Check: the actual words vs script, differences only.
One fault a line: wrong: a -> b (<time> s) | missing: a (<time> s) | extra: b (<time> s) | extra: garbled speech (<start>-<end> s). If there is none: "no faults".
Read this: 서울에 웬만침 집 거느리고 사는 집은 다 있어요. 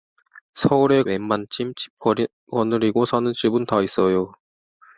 no faults